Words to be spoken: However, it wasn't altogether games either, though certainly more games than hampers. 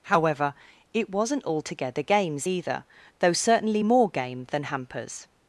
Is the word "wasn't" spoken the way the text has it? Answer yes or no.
yes